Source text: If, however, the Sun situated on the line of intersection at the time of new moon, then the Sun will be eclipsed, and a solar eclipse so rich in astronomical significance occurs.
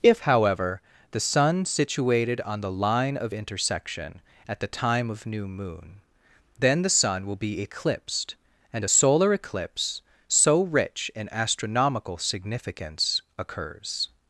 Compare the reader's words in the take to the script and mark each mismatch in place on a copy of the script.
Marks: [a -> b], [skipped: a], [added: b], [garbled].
If, however, the Sun situated on the line of intersection at the time of new moon, then the Sun will be eclipsed, and a solar eclipse so rich in astronomical significance occurs.